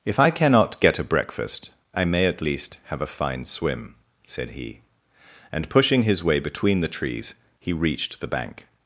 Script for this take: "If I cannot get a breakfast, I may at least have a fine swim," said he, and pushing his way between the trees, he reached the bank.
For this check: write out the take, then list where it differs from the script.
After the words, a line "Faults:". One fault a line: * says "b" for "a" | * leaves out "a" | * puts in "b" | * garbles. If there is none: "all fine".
"If I cannot get a breakfast, I may at least have a fine swim," said he, and pushing his way between the trees, he reached the bank.
Faults:
all fine